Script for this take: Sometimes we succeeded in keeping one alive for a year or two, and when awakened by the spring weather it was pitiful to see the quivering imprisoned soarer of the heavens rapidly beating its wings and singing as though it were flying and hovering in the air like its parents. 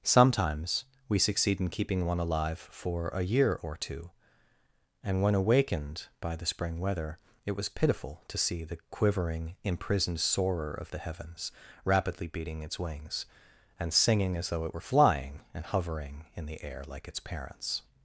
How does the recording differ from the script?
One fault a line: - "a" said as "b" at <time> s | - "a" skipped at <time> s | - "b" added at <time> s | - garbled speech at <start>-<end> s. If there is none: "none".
- "succeeded" said as "succeed" at 1.2 s